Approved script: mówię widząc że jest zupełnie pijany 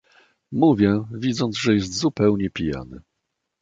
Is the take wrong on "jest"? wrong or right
right